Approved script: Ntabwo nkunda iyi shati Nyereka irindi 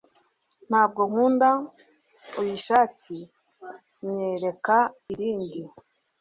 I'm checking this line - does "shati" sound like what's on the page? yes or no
yes